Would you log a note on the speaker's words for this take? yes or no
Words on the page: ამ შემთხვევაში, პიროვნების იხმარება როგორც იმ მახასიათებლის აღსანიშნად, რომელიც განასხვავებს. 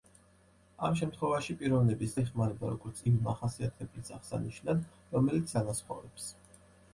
no